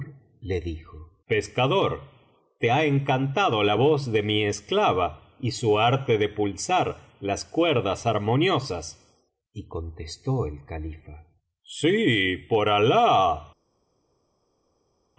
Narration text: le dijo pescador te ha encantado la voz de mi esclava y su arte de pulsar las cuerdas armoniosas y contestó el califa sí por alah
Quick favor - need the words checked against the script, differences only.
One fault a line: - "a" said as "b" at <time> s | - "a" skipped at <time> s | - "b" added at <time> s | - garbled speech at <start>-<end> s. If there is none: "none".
none